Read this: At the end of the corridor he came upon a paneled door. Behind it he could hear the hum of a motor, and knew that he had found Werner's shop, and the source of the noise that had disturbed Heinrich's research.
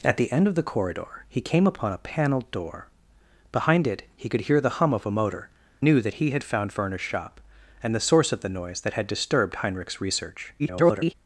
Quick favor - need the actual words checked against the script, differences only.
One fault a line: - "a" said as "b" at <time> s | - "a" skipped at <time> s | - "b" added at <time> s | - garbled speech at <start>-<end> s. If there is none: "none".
- "and" skipped at 5.5 s
- garbled speech at 10.6-11.1 s